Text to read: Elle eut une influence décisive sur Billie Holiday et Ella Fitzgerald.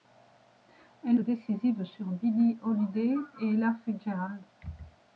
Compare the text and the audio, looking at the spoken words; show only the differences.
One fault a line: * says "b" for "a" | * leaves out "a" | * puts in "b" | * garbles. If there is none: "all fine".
* leaves out "eut une influence"